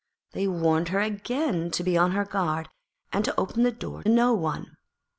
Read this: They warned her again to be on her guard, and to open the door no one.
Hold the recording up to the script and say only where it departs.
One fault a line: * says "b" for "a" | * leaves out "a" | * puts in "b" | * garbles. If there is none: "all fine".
all fine